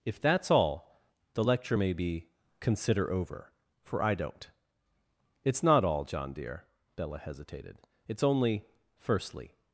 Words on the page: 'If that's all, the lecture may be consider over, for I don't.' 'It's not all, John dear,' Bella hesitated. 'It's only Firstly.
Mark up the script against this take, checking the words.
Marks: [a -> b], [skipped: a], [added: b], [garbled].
'If that's all, the lecture may be consider over, for I don't.' 'It's not all, John dear,' Bella hesitated. 'It's only Firstly.